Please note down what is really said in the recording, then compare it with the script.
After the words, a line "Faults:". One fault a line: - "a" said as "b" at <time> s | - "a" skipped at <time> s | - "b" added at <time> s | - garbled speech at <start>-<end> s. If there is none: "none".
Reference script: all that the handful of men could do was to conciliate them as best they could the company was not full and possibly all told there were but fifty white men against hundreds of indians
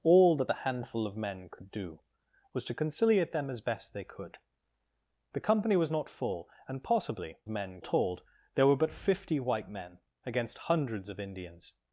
all that the handful of men could do was to conciliate them as best they could the company was not full and possibly men told there were but fifty white men against hundreds of indians
Faults:
- "all" said as "men" at 7.5 s